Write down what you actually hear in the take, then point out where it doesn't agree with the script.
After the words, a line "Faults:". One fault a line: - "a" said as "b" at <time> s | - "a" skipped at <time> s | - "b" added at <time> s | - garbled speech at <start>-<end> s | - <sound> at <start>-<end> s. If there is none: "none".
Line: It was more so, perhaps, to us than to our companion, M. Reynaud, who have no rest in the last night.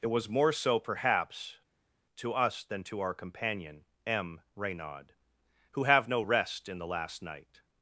It was more so, perhaps, to us than to our companion, M. Reynaud, who have no rest in the last night.
Faults:
none